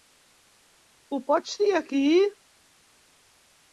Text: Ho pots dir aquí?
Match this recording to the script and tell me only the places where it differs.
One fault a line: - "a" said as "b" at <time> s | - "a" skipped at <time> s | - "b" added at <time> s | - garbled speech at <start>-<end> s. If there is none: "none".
none